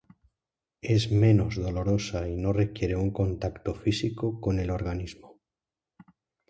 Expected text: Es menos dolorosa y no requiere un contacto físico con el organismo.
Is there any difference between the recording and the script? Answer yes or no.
no